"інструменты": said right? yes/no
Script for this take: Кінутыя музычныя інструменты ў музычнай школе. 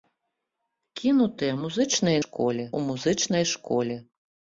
no